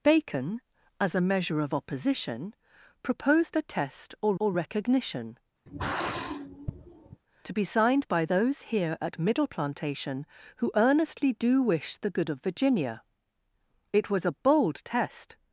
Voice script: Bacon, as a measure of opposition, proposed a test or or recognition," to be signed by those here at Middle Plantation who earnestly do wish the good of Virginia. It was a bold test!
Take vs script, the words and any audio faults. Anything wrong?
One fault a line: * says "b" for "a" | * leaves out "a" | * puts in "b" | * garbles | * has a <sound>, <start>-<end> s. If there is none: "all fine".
* has a sigh, 5.7-7.2 s